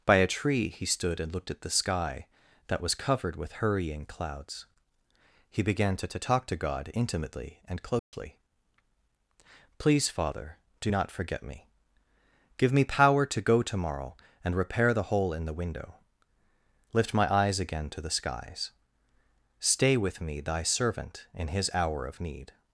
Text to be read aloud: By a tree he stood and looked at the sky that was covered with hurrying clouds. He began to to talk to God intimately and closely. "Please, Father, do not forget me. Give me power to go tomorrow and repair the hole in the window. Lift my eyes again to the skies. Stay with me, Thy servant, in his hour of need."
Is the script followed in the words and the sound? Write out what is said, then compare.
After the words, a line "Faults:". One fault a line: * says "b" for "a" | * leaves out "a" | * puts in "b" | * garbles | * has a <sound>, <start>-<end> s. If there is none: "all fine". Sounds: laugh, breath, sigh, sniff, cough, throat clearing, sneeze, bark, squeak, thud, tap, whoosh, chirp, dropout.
By a tree he stood and looked at the sky that was covered with hurrying clouds. He began to to talk to God intimately and closely. "Please, Father, do not forget me. Give me power to go tomorrow and repair the hole in the window. Lift my eyes again to the skies. Stay with me, Thy servant, in his hour of need."
Faults:
* has a dropout, 8.0-8.1 s